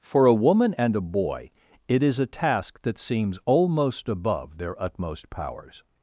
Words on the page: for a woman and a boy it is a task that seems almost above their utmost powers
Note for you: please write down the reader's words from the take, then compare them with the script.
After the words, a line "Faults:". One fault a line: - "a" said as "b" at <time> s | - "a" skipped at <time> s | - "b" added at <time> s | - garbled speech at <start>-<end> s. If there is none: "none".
for a woman and a boy it is a task that seems almost above their utmost powers
Faults:
none